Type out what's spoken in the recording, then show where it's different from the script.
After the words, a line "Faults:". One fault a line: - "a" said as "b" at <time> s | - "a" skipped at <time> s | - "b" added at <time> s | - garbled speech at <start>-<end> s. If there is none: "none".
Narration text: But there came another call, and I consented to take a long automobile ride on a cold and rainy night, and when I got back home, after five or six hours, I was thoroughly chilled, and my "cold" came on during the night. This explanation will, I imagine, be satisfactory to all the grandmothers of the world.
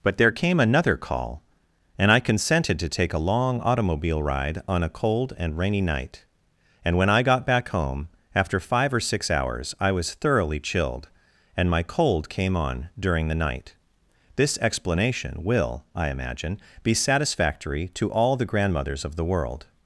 But there came another call, and I consented to take a long automobile ride on a cold and rainy night, and when I got back home, after five or six hours, I was thoroughly chilled, and my "cold" came on during the night. This explanation will, I imagine, be satisfactory to all the grandmothers of the world.
Faults:
none